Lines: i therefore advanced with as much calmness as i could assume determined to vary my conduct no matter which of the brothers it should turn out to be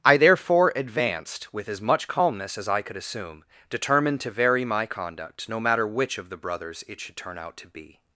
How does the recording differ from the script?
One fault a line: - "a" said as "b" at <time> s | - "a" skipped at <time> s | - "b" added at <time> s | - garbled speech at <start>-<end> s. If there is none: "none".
none